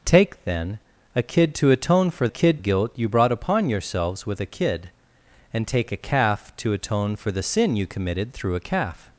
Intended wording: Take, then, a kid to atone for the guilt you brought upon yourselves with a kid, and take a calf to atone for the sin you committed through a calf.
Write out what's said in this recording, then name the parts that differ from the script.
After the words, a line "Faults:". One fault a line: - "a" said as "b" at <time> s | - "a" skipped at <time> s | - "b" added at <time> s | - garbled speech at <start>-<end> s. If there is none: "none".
Take, then, a kid to atone for kid guilt you brought upon yourselves with a kid, and take a calf to atone for the sin you committed through a calf.
Faults:
- "the" said as "kid" at 2.3 s